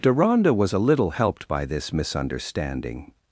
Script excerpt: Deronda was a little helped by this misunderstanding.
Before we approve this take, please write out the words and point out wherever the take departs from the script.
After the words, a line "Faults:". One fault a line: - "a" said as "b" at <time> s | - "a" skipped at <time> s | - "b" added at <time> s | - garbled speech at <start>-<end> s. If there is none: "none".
Deronda was a little helped by this misunderstanding.
Faults:
none